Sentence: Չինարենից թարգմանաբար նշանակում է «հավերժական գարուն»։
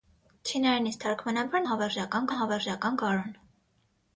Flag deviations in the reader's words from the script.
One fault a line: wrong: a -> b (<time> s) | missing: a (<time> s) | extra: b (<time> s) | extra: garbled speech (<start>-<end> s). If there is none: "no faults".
wrong: նշանակում -> հավերժական (1.7 s)